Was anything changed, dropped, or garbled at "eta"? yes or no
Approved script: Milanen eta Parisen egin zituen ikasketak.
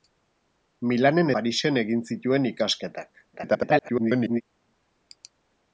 yes